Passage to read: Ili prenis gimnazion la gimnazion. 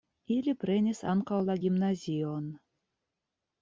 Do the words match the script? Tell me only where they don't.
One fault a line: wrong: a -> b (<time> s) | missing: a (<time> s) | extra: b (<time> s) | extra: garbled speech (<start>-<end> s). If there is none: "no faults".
wrong: gimnazion -> ankaŭ (1.1 s)